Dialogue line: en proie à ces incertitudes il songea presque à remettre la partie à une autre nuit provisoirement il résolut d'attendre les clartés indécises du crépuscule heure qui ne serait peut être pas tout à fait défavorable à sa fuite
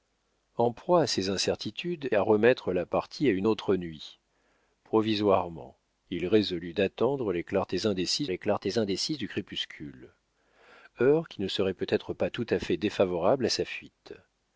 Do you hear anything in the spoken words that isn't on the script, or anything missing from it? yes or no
yes